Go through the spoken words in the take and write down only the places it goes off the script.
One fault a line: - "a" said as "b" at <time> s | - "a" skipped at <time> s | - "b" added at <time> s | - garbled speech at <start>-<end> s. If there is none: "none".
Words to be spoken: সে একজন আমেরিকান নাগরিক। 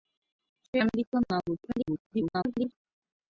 - "একজন" skipped at 0.8 s
- garbled speech at 1.7-2.7 s